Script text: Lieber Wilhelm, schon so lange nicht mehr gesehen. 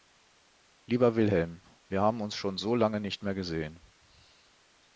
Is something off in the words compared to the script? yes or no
yes